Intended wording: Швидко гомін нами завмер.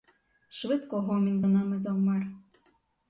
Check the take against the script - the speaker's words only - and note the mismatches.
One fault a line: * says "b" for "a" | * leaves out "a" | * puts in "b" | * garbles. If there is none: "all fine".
* puts in "за"